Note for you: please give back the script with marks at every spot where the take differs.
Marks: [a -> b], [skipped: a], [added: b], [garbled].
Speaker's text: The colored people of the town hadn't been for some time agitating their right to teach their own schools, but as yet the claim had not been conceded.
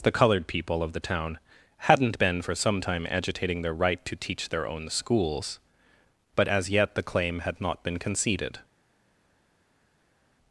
The colored people of the town hadn't been for some time agitating their right to teach their own schools, but as yet the claim had not been conceded.